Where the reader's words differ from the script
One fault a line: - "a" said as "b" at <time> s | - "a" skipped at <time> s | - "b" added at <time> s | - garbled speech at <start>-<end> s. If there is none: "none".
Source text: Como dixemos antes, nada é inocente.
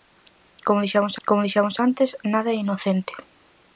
- "como dixemos" added at 1.3 s